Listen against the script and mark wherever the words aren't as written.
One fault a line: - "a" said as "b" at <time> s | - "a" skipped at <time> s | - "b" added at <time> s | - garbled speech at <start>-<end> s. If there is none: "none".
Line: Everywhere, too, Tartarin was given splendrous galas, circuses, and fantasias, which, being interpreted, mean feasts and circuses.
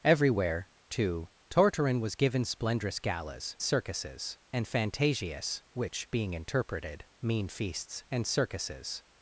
none